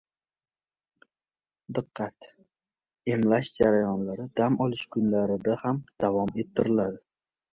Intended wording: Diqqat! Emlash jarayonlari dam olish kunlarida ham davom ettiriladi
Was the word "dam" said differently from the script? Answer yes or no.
no